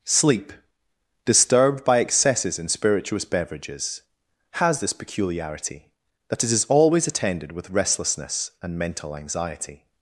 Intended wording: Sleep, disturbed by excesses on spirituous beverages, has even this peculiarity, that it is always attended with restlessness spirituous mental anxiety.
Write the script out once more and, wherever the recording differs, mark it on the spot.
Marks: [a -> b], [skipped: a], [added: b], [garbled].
Sleep, disturbed by excesses [on -> in] spirituous beverages, has [skipped: even] this peculiarity, that it is always attended with restlessness [spirituous -> and] mental anxiety.